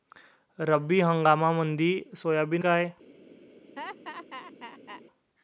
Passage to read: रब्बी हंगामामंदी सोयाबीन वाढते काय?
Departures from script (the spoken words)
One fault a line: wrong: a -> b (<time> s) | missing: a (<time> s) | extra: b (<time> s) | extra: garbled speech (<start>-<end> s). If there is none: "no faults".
missing: वाढते (2.6 s)